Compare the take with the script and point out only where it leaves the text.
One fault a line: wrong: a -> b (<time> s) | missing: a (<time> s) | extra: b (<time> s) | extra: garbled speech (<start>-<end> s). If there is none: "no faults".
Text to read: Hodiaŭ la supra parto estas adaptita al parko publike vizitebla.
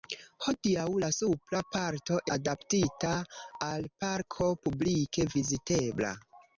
missing: estas (2.2 s)